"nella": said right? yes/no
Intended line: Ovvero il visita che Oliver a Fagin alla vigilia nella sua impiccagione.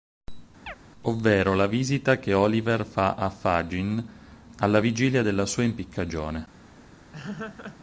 no